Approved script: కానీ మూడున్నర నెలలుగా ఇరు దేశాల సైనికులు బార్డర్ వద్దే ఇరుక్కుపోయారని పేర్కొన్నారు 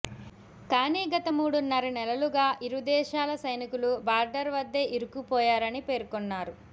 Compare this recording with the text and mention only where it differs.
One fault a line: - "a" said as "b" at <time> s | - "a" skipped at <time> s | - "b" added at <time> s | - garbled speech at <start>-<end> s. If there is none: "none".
- "గత" added at 1.1 s